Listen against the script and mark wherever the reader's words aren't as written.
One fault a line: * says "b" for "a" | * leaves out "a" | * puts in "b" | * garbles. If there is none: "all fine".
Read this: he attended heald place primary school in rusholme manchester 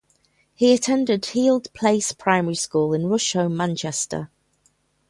all fine